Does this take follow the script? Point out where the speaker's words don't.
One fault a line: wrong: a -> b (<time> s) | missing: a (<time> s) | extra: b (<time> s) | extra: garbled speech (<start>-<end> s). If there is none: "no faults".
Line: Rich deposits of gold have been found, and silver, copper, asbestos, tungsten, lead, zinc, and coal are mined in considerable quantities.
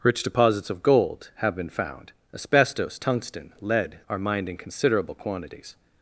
missing: and silver copper (2.1 s)
missing: zinc and coal (4.0 s)